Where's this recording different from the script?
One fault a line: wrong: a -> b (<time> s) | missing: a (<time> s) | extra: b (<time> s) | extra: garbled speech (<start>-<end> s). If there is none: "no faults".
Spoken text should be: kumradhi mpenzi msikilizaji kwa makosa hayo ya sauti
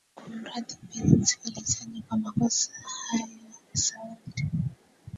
missing: ya (3.3 s)